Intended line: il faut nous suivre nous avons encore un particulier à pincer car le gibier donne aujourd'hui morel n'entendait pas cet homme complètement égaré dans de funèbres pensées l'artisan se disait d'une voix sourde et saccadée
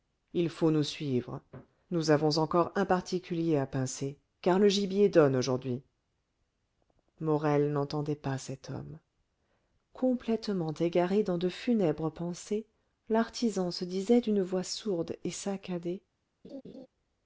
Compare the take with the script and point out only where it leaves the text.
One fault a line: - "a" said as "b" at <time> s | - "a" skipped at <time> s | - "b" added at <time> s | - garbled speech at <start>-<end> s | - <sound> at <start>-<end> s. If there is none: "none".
- laugh at 16.4-16.9 s